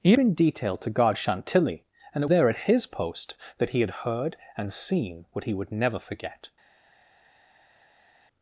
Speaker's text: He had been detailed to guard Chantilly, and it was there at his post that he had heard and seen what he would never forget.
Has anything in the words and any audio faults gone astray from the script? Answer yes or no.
yes